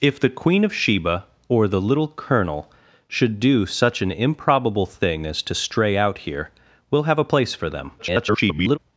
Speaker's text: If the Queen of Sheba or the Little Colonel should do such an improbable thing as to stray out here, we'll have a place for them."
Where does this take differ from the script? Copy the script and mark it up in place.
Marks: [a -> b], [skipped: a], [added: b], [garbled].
If the Queen of Sheba or the Little Colonel should do such an improbable thing as to stray out here, we'll have a place for them." [garbled]